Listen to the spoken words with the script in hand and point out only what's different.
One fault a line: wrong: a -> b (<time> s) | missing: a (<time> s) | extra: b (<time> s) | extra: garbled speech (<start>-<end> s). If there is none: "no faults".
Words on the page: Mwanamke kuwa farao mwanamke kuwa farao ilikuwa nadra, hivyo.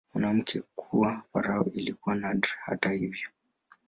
missing: mwanamke kuwa farao (1.7 s)
extra: hata (2.6 s)